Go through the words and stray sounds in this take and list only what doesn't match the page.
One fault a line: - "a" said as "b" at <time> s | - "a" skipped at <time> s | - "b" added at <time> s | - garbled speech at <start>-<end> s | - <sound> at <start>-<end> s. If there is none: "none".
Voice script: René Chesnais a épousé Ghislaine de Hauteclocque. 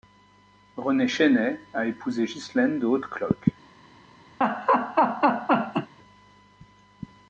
- laugh at 4.4-5.9 s